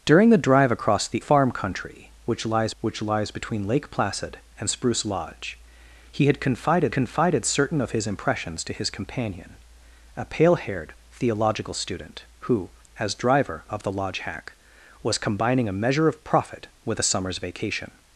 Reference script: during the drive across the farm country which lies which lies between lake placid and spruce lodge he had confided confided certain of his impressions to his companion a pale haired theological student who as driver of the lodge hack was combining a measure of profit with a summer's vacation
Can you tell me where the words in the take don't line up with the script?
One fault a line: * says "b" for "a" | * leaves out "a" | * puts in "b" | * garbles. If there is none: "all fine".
all fine